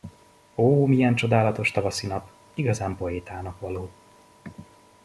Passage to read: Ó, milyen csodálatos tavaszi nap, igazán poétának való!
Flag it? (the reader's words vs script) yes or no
no